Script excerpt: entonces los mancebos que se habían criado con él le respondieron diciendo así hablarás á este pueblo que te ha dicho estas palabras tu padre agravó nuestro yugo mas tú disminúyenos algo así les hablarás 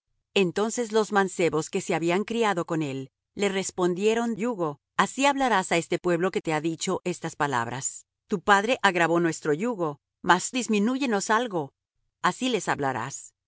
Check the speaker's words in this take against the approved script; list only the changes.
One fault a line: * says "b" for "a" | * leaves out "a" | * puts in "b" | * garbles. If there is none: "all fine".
* says "yugo" for "diciendo"
* leaves out "tú"